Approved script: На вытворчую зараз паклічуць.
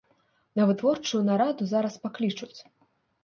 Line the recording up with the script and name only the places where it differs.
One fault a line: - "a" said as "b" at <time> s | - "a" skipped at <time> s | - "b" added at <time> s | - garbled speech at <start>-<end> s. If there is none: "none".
- "нараду" added at 1.3 s